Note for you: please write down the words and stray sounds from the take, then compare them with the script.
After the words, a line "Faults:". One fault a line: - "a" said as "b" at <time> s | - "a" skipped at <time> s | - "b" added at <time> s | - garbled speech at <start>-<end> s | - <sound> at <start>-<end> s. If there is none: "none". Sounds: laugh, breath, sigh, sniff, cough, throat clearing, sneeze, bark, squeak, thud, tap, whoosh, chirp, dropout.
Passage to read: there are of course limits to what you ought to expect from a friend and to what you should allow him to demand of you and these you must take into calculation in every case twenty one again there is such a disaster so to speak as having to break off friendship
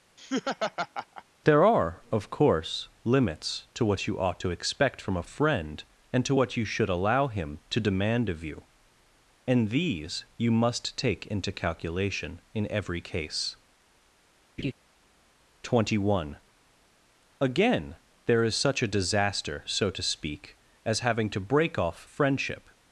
there are of course limits to what you ought to expect from a friend and to what you should allow him to demand of you and these you must take into calculation in every case twenty one again there is such a disaster so to speak as having to break off friendship
Faults:
- laugh at 0.2-1.2 s
- laugh at 14.6-14.7 s